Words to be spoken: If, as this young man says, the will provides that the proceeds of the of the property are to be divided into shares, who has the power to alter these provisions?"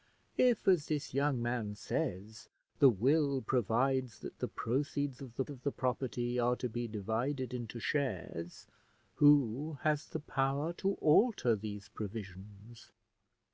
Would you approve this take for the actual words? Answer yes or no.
yes